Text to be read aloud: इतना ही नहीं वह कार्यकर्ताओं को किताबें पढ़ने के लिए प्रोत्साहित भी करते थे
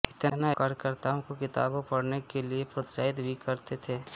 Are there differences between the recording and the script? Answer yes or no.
yes